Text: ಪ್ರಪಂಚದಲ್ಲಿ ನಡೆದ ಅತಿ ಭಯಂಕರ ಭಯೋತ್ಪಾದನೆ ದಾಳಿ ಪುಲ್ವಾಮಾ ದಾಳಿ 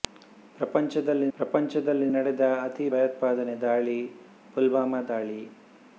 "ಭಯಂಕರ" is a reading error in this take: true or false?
true